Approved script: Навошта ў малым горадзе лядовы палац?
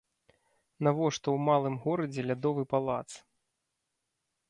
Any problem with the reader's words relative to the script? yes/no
no